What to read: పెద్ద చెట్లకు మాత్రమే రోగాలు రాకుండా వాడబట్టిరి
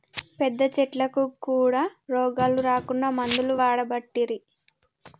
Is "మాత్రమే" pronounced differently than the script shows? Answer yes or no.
yes